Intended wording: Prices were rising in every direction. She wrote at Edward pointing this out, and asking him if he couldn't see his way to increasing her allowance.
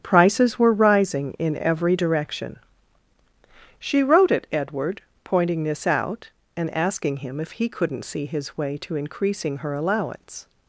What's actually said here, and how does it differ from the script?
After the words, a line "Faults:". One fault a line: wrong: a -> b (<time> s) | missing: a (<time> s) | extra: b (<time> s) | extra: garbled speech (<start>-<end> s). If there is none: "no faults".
Prices were rising in every direction. She wrote at Edward pointing this out, and asking him if he couldn't see his way to increasing her allowance.
Faults:
no faults